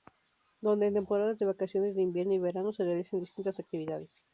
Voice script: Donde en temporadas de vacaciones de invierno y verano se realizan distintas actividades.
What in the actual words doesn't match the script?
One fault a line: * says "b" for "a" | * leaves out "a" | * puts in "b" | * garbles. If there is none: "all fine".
all fine